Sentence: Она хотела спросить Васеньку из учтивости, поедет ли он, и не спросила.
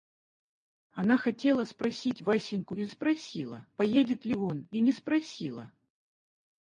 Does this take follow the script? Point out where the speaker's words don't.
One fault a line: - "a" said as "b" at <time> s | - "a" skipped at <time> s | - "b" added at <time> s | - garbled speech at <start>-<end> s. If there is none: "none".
- "учтивости" said as "спросила" at 2.9 s